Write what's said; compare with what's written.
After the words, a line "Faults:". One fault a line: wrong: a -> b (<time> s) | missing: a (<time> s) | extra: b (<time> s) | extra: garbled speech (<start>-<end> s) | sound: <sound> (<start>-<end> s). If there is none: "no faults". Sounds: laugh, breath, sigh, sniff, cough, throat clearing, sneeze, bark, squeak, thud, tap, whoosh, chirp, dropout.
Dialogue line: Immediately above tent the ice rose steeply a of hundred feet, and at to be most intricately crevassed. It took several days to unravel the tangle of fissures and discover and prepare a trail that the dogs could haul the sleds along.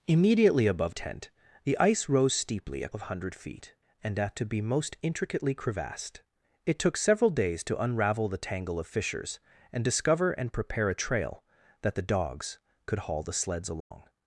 Immediately above tent the ice rose steeply a of hundred feet, and at to be most intricately crevassed. It took several days to unravel the tangle of fissures and discover and prepare a trail that the dogs could haul the sleds along.
Faults:
sound: dropout (13.8-13.9 s)